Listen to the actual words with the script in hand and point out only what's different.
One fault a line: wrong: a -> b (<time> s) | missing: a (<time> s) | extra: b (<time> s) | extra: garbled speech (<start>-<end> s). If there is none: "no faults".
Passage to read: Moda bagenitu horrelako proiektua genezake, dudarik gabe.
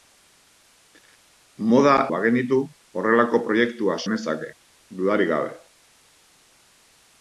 no faults